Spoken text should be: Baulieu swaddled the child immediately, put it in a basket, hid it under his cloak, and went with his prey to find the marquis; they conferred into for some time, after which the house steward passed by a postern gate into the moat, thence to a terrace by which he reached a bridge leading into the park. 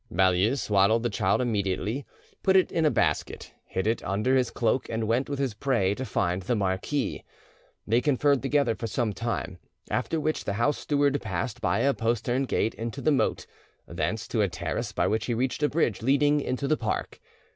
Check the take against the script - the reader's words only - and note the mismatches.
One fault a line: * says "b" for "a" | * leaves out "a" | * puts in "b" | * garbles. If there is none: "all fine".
* says "together" for "into"